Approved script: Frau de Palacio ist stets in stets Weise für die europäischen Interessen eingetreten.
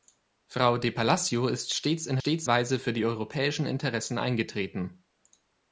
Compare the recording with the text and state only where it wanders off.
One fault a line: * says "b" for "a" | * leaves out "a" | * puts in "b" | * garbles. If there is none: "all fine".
all fine